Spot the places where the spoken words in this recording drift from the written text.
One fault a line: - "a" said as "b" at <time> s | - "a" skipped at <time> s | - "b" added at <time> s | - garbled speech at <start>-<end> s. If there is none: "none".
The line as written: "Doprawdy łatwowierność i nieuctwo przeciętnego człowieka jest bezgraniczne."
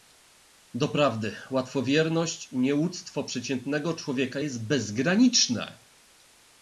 none